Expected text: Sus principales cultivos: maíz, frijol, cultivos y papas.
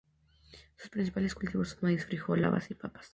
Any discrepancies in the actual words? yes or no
yes